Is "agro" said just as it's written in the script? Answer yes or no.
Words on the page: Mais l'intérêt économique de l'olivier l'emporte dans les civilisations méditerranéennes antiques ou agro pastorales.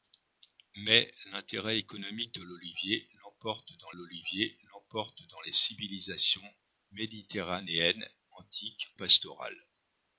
no